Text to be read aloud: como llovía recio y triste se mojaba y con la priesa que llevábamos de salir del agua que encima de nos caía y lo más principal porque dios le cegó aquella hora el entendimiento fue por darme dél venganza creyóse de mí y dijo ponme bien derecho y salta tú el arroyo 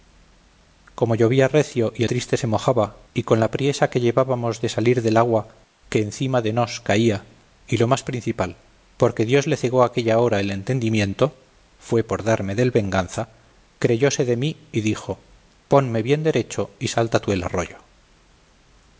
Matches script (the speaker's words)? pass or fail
pass